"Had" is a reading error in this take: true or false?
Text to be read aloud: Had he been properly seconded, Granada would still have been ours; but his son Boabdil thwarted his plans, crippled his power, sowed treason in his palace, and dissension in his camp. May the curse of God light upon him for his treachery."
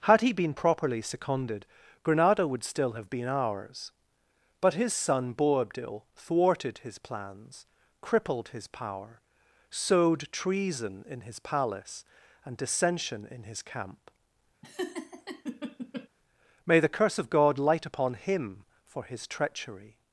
false